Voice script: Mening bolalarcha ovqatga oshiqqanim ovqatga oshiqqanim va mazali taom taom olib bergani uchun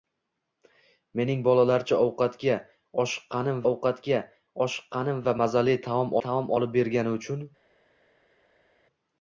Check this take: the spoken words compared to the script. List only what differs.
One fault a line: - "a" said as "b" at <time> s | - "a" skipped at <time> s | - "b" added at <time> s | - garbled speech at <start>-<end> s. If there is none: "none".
none